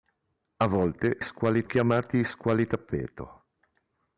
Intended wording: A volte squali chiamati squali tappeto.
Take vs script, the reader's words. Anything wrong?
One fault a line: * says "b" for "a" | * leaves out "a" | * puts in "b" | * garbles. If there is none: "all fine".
all fine